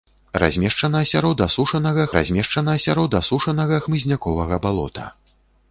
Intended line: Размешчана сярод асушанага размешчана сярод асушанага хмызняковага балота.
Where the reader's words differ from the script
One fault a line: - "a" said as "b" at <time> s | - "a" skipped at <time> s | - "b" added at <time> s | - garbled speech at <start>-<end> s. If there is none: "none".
none